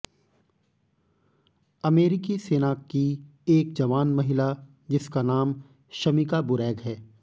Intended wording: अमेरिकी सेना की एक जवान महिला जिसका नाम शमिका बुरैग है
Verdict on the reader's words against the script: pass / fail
pass